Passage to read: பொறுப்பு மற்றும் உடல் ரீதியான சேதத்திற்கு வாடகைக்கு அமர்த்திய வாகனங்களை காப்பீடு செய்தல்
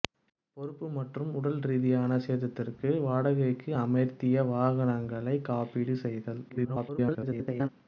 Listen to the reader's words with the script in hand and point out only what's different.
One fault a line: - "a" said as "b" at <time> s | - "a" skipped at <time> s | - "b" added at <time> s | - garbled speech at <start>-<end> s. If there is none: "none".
- garbled speech at 6.5-7.7 s